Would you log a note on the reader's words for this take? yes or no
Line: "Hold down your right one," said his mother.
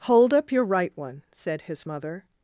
yes